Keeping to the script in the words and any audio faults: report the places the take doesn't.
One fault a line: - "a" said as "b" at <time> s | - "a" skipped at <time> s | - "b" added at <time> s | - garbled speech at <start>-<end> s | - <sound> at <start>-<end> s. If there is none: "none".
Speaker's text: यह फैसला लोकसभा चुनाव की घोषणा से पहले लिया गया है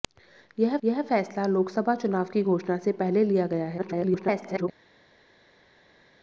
- "यह" added at 0.8 s
- garbled speech at 3.8-4.7 s